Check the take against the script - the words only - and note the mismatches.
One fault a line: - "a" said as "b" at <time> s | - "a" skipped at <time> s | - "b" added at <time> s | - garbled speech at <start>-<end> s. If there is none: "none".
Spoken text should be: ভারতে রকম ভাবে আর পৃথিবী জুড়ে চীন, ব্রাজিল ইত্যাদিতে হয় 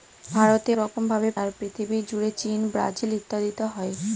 none